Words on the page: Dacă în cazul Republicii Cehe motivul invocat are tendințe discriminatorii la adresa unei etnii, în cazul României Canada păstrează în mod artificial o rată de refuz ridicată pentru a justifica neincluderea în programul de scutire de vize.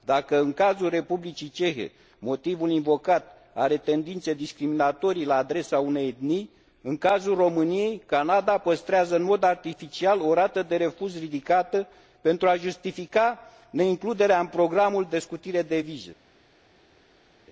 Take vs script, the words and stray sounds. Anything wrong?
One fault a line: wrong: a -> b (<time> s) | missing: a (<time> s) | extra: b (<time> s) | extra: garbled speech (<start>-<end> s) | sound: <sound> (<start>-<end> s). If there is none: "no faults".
no faults